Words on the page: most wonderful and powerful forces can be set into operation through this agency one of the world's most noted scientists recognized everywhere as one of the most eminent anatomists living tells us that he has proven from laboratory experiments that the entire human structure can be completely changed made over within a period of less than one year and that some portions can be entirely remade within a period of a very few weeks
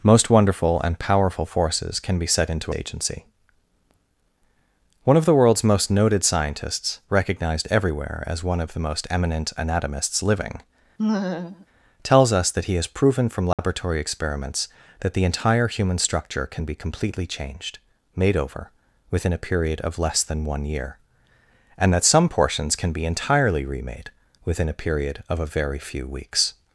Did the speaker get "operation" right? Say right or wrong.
wrong